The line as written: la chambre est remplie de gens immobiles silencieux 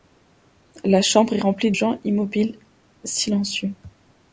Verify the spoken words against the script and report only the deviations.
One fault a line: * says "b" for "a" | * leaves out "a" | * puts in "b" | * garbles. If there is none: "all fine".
* leaves out "de"